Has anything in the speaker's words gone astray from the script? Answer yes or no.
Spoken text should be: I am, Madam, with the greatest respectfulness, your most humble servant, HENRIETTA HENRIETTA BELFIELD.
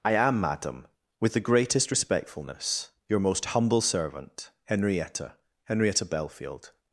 no